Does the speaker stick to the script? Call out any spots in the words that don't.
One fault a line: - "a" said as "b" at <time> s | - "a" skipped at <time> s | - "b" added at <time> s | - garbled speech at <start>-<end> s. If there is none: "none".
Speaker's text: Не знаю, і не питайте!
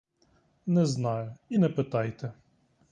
none